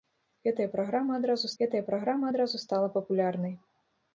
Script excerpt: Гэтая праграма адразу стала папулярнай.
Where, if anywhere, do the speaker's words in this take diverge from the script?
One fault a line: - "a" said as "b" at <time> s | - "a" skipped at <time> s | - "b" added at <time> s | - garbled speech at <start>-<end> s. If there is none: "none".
- "гэтая праграма адразу" added at 1.6 s